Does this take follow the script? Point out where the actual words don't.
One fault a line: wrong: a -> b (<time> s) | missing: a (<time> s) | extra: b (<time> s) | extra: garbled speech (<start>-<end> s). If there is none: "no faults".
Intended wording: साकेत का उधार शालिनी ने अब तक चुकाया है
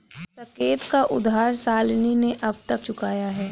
no faults